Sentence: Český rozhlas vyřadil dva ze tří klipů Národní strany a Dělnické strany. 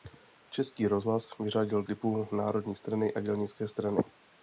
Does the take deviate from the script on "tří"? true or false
true